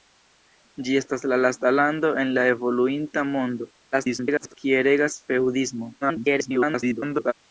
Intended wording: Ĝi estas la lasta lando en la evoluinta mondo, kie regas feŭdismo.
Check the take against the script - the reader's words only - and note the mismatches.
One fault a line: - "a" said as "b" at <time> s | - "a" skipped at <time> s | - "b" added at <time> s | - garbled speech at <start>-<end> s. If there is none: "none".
- garbled speech at 3.9-4.5 s
- garbled speech at 6.0-7.3 s